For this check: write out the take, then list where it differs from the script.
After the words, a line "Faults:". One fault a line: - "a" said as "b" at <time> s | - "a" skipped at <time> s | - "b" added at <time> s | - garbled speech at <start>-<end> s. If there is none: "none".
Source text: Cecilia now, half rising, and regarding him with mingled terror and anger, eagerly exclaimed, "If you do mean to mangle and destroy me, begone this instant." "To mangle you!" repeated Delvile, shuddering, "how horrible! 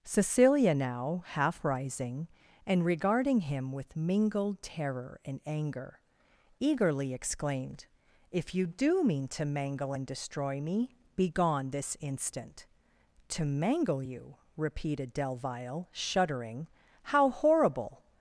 Cecilia now, half rising, and regarding him with mingled terror and anger, eagerly exclaimed, "If you do mean to mangle and destroy me, begone this instant." "To mangle you!" repeated Delvile, shuddering, "how horrible!
Faults:
none